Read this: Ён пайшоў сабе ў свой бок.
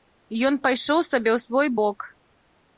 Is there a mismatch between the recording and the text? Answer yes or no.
no